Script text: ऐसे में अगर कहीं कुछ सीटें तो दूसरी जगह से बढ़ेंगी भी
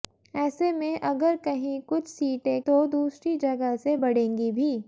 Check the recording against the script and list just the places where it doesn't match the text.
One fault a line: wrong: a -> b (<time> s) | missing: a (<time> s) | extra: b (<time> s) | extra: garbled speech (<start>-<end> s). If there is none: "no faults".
no faults